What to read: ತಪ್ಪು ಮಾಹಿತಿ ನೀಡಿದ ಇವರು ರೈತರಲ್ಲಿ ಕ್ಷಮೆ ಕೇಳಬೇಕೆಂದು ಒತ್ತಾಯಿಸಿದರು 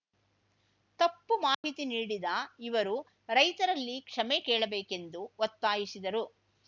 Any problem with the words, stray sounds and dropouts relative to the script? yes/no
yes